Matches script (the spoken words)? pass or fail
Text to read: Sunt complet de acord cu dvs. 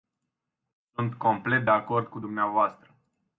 pass